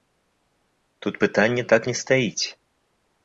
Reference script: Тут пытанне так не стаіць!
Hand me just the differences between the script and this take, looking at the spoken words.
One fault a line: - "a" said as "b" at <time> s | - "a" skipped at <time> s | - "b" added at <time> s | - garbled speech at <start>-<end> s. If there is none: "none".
none